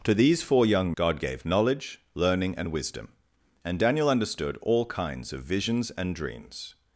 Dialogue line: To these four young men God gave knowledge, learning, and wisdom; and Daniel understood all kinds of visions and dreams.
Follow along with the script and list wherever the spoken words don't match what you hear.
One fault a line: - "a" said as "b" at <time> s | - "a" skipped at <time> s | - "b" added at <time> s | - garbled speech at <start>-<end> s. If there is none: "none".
- "men" skipped at 0.9 s